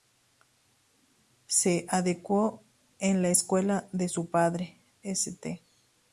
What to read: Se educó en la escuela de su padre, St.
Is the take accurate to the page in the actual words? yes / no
yes